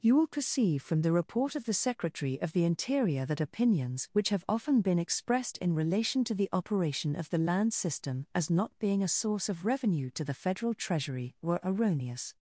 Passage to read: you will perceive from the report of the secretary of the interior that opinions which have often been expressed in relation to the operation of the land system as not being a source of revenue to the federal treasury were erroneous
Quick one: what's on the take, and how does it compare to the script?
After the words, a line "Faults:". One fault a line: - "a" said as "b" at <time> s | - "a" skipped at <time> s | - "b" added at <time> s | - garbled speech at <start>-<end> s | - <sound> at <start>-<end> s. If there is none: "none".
you will perceive from the report of the secretary of the interior that opinions which have often been expressed in relation to the operation of the land system as not being a source of revenue to the federal treasury were erroneous
Faults:
none